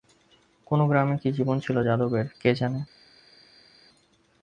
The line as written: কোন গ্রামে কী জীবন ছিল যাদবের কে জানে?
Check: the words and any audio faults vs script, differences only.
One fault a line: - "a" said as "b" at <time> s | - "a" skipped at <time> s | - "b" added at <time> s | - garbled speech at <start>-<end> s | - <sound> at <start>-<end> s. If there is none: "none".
none